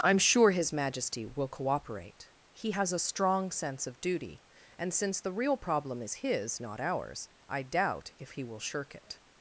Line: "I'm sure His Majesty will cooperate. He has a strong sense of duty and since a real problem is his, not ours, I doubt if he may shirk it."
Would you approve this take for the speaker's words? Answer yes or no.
no